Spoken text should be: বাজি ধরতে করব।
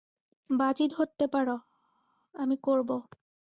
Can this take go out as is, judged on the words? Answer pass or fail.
fail